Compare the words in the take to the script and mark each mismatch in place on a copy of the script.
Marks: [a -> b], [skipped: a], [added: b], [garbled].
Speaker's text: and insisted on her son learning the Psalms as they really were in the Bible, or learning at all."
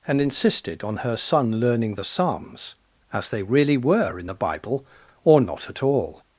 and insisted on her son learning the Psalms as they really were in the Bible, or [learning -> not] at all."